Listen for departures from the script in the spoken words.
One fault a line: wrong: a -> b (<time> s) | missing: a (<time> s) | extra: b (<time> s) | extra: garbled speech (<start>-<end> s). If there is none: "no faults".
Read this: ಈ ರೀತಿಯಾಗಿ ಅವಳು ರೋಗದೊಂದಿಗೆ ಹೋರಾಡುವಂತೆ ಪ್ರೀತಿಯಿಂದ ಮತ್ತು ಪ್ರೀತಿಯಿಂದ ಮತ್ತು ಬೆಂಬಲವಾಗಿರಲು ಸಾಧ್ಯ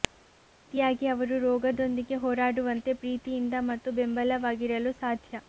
wrong: ಅವಳು -> ಅವರು (1.1 s)
missing: ಪ್ರೀತಿಯಿಂದ ಮತ್ತು (3.9 s)